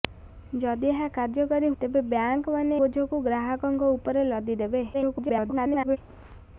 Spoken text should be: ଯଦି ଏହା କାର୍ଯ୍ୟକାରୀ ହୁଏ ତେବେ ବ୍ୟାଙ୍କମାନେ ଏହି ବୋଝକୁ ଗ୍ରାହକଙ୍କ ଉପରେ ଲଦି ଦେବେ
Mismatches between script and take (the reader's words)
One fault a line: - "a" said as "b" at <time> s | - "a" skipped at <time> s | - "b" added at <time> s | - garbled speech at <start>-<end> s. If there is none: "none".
- "ହୁଏ" skipped at 1.7 s
- "ଏହି" skipped at 2.8 s
- garbled speech at 4.9-6.0 s